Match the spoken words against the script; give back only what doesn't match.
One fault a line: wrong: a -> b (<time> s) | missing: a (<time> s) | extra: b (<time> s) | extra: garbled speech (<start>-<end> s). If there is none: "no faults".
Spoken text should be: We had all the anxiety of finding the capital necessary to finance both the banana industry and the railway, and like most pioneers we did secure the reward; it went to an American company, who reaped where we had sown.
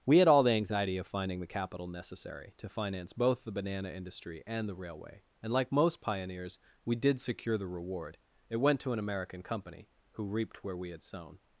no faults